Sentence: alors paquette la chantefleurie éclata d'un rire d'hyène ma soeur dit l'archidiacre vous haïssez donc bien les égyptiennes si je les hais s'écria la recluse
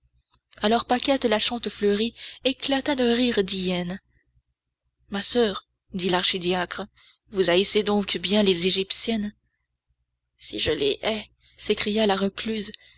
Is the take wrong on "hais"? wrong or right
right